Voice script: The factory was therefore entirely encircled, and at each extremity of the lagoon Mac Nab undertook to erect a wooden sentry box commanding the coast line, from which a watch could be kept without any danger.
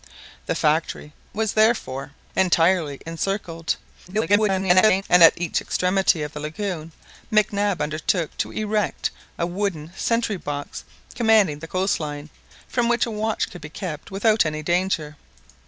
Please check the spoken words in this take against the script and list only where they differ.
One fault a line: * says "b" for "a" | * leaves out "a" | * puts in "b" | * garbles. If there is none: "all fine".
* garbles